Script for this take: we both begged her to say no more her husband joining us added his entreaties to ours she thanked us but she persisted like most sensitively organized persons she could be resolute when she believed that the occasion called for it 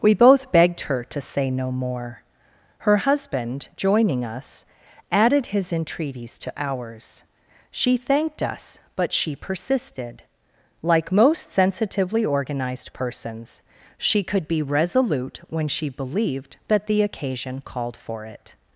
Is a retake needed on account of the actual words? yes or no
no